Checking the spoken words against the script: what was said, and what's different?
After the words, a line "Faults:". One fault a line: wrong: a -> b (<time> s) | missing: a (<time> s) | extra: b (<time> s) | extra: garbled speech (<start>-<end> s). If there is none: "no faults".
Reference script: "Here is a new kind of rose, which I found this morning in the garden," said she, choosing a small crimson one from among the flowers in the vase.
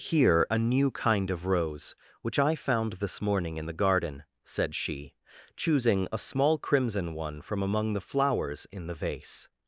"Here a new kind of rose, which I found this morning in the garden," said she, choosing a small crimson one from among the flowers in the vase.
Faults:
missing: is (0.5 s)